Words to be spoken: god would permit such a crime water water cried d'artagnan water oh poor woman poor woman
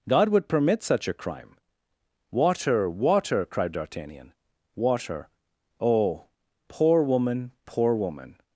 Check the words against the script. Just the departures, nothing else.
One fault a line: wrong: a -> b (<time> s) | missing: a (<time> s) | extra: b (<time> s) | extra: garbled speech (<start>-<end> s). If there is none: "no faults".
no faults